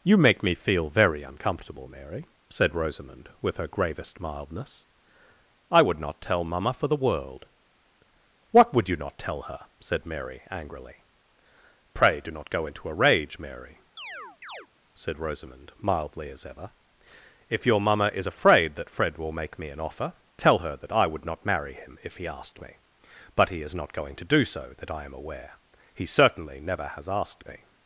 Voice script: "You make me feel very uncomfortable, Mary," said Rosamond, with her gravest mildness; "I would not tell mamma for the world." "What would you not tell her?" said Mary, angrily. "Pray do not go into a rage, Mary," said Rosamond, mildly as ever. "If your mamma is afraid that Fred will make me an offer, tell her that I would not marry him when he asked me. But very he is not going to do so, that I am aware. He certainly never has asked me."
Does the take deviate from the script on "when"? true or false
true